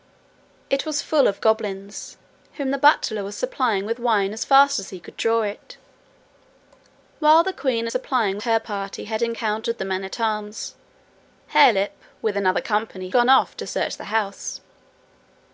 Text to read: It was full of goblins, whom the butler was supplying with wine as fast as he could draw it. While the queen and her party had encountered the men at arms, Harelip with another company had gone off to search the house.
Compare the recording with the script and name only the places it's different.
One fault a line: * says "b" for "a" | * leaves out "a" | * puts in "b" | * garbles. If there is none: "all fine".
* says "supplying" for "and"
* leaves out "had"